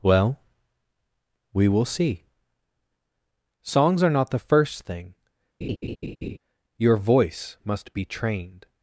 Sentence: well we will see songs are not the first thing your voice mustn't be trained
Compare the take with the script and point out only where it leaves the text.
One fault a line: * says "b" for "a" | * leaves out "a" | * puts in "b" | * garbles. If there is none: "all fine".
* says "must" for "mustn't"